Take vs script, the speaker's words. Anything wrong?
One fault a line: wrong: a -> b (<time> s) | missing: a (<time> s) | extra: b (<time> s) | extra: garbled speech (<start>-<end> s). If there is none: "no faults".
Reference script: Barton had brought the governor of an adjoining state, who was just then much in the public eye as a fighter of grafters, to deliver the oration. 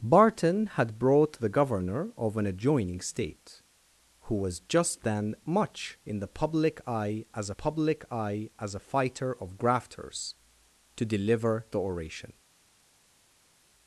extra: public eye as (7.5 s)